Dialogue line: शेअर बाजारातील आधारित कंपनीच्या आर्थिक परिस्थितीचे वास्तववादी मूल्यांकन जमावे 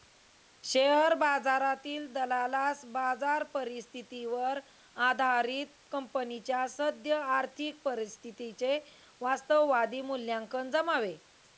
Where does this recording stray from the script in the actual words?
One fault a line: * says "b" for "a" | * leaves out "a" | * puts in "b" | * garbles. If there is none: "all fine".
* puts in "दलालास बाजार परिस्थितीवर"
* puts in "सद्य"